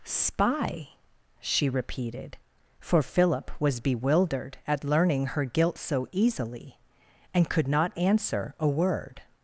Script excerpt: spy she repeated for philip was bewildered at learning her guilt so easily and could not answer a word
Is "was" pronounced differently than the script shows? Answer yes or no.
no